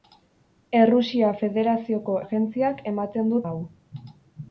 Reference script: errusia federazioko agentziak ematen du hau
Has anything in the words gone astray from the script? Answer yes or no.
no